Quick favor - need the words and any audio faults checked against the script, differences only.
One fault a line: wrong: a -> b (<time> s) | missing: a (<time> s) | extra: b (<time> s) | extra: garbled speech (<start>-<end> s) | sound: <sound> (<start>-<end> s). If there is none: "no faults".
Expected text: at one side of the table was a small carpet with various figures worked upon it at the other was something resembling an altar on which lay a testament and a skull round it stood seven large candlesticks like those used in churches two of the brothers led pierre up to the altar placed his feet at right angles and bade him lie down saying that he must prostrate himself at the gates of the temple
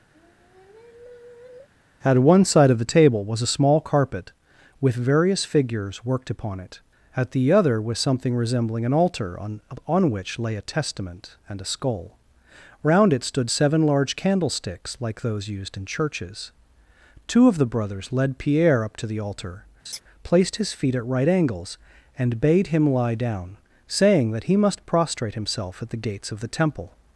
sound: sigh (0.1-1.7 s)
extra: on (9.8 s)
sound: laugh (19.8-20.0 s)